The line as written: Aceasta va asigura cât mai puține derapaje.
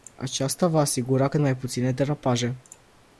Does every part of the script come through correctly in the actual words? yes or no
yes